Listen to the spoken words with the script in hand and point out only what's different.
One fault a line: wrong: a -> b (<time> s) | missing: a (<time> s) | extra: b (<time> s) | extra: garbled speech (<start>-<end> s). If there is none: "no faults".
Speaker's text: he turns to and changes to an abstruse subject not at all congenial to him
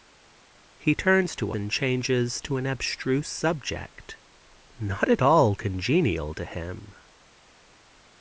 no faults